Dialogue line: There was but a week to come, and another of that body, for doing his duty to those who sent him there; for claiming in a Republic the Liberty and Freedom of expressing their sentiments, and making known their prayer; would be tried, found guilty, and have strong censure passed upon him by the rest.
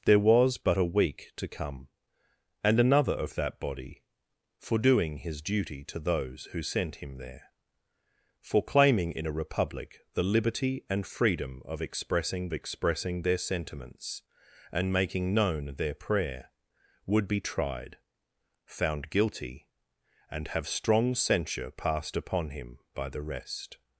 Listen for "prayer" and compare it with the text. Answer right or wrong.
right